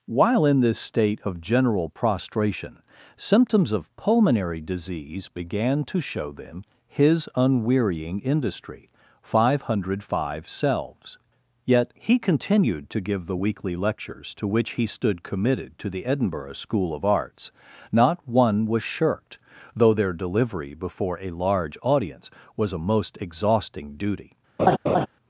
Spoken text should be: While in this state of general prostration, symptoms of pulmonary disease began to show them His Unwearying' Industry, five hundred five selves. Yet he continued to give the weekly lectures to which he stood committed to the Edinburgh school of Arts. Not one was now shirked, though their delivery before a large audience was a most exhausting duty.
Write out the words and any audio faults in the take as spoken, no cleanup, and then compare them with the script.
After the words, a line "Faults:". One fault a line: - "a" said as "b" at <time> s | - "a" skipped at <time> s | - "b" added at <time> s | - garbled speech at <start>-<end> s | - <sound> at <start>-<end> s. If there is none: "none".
While in this state of general prostration, symptoms of pulmonary disease began to show them His Unwearying' Industry, five hundred five selves. Yet he continued to give the weekly lectures to which he stood committed to the Edinburgh school of Arts. Not one was shirked, though their delivery before a large audience was a most exhausting duty.
Faults:
- "now" skipped at 18.8 s
- laugh at 24.6-25.1 s